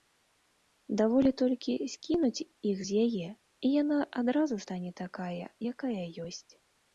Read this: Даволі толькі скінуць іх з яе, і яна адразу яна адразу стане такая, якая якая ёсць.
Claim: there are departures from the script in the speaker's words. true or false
true